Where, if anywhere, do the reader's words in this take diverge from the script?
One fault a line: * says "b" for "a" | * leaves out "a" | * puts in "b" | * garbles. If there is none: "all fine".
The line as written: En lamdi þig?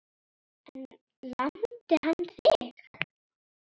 * puts in "hann"